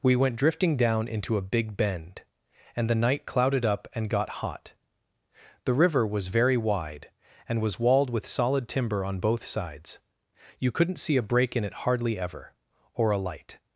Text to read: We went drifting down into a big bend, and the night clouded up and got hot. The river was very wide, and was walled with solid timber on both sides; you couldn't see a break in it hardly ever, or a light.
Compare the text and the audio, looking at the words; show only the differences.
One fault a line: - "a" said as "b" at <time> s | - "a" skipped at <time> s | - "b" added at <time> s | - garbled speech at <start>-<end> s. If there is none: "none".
none